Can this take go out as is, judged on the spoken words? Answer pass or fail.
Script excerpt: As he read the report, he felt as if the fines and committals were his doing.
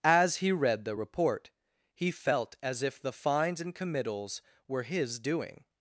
pass